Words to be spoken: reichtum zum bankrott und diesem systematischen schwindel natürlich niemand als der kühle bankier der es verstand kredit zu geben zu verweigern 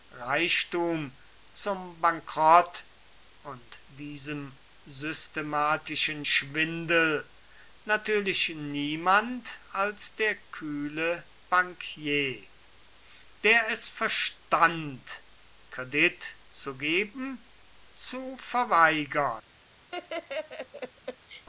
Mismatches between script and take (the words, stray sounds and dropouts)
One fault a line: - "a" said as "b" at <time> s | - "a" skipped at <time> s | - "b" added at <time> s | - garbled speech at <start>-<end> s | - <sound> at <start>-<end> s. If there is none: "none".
- laugh at 19.9-21.5 s